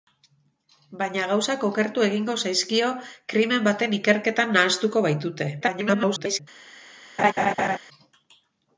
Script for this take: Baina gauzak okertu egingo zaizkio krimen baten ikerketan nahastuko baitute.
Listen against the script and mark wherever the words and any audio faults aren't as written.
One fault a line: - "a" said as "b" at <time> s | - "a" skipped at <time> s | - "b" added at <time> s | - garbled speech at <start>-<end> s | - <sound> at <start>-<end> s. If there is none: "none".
- garbled speech at 5.6-6.4 s
- laugh at 7.2-7.8 s